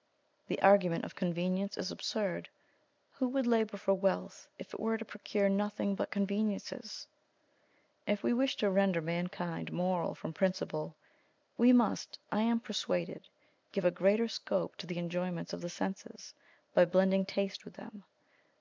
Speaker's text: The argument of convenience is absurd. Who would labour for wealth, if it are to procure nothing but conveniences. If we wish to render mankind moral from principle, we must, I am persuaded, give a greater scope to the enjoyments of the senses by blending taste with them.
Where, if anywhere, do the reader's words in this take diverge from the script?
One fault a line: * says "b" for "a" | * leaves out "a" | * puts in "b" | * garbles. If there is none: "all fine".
* says "were" for "are"